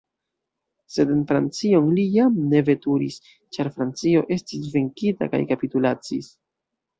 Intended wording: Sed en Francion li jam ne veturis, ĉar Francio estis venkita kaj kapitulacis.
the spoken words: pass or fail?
pass